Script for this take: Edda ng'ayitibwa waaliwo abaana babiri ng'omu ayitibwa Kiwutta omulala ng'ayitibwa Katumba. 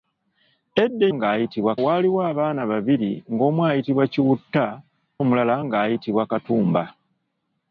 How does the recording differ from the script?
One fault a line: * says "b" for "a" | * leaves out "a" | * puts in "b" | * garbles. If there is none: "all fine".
all fine